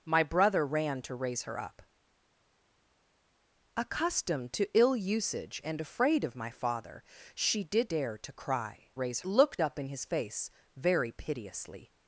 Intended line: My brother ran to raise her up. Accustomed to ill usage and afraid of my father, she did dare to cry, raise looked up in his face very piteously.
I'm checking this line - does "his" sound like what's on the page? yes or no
yes